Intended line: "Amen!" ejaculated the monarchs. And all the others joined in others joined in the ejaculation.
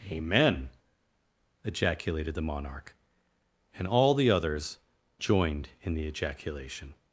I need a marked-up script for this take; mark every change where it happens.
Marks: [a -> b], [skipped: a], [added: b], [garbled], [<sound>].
"Amen!" ejaculated the [monarchs. -> monarch] And all the others joined in [skipped: others joined in] the ejaculation.